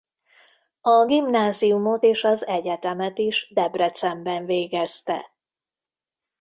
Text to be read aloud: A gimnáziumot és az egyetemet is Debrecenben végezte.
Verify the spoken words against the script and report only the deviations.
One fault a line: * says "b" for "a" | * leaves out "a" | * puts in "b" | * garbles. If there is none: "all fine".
all fine